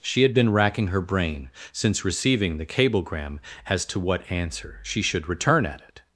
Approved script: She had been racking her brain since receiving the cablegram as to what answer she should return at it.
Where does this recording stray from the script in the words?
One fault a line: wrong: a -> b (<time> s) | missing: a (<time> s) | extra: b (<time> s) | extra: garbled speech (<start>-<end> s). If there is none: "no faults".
no faults